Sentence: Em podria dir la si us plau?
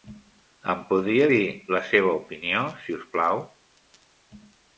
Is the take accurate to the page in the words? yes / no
no